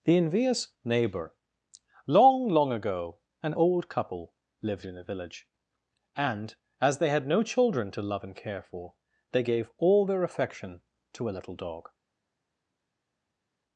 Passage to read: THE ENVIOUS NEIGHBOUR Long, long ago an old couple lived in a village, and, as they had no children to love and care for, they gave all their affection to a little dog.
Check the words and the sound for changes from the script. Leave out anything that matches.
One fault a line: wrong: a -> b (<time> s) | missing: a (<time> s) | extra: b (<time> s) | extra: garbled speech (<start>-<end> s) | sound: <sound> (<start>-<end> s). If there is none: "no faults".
no faults